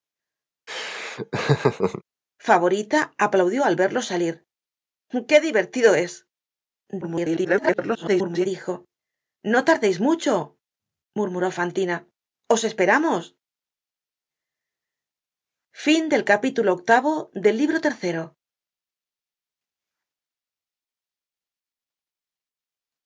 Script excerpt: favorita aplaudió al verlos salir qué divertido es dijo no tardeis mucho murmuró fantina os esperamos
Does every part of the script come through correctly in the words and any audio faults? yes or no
no